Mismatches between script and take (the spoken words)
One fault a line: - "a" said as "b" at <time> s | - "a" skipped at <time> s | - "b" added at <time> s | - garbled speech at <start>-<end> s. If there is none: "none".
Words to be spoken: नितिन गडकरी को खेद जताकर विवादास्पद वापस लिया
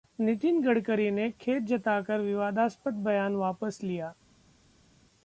- "को" said as "ने" at 1.1 s
- "बयान" added at 3.0 s